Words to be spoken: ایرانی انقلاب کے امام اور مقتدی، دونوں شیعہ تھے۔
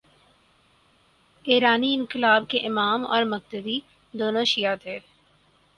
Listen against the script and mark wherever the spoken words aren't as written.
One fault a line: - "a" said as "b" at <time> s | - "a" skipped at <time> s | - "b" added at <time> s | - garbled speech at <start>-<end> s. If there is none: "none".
none